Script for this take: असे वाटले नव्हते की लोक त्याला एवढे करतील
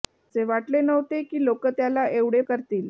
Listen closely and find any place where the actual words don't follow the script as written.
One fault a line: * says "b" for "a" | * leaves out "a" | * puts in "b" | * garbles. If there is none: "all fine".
all fine